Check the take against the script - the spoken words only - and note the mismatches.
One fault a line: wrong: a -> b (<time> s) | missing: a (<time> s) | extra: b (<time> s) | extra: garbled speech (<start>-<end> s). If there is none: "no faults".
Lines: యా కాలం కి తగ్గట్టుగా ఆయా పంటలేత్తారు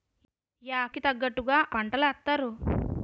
missing: కాలం (0.8 s)
missing: ఆయా (1.6 s)